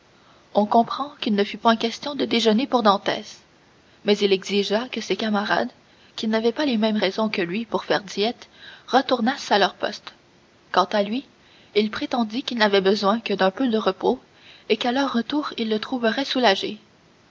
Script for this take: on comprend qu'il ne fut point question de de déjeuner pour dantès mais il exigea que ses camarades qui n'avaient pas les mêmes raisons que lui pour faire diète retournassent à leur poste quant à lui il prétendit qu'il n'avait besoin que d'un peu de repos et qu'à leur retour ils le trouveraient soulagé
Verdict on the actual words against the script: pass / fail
fail